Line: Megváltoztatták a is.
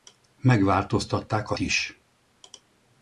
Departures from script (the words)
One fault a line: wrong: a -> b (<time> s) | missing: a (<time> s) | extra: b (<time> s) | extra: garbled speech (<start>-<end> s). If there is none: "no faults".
no faults